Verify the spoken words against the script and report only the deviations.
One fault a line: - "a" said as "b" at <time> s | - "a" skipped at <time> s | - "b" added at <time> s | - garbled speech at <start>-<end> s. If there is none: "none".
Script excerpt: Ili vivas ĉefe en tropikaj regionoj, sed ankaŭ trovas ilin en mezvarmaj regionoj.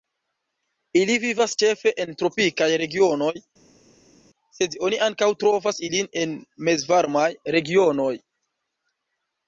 - "oni" added at 4.9 s